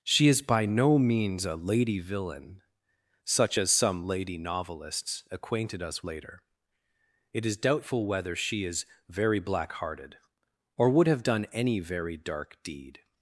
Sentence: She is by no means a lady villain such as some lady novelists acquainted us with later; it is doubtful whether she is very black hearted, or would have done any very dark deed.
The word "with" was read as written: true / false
false